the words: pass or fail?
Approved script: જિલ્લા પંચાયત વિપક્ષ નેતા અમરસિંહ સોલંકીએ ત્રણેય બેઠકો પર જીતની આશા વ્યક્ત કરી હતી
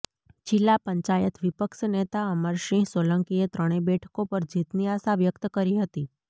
pass